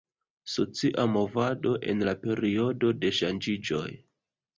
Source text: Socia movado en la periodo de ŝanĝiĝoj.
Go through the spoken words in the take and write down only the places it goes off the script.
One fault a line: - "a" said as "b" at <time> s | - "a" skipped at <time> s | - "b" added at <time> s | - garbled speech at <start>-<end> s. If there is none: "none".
none